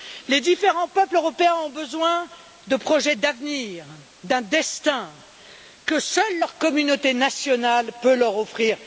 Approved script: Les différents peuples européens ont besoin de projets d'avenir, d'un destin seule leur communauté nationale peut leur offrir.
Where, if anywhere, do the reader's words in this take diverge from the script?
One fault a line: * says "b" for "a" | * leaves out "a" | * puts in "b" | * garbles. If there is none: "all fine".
* puts in "que"